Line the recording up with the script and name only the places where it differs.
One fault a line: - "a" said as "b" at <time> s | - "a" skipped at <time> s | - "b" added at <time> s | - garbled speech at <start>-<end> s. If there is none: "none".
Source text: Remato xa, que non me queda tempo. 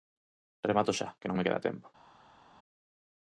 none